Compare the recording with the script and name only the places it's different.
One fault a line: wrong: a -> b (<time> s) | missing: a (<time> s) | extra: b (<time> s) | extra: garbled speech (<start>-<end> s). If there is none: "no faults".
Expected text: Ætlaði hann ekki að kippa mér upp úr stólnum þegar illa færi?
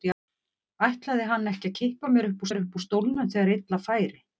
extra: mér upp (2.5 s)